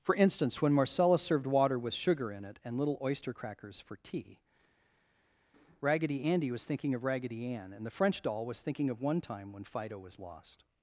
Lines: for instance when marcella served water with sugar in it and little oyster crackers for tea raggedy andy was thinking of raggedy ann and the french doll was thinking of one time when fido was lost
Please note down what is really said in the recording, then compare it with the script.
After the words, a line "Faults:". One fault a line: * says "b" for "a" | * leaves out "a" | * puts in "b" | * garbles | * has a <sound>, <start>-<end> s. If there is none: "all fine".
for instance when marcella served water with sugar in it and little oyster crackers for tea raggedy andy was thinking of raggedy ann and the french doll was thinking of one time when fido was lost
Faults:
all fine